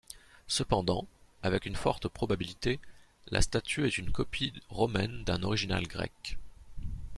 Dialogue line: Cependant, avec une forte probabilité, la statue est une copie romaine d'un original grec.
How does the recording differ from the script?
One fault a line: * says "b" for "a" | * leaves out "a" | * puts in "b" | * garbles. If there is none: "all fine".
all fine